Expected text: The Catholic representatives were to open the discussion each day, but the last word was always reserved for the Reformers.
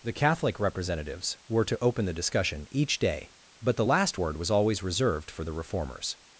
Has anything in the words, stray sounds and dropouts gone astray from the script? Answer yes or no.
no